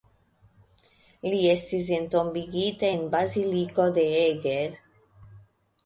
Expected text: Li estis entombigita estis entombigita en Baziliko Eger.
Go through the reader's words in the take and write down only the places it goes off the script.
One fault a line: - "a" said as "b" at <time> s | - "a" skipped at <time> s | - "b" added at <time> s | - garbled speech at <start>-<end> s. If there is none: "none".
- "estis entombigita" skipped at 2.9 s
- "de" added at 4.0 s